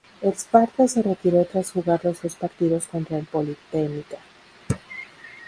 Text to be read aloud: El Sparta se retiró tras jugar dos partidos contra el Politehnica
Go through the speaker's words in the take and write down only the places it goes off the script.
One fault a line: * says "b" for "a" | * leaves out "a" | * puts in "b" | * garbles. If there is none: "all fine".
* puts in "los"